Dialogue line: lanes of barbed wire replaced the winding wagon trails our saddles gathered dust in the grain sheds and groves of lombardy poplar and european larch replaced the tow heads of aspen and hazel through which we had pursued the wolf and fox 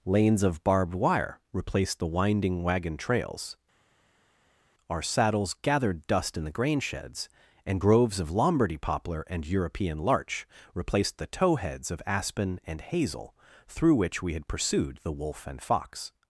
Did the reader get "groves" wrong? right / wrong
right